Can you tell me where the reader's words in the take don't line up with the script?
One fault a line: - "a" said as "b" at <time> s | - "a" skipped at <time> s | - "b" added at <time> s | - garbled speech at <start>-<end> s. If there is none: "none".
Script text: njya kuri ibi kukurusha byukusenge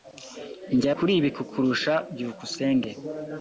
none